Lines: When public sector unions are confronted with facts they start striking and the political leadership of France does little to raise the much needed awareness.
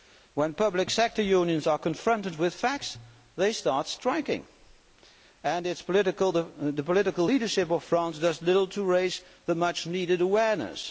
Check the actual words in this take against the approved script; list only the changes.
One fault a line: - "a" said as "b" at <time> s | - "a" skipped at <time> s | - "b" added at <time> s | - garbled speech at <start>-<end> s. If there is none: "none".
none